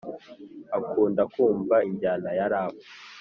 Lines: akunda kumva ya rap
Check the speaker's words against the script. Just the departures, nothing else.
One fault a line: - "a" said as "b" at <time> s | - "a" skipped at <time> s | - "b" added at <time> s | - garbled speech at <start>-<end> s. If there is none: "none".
- "injyana" added at 1.9 s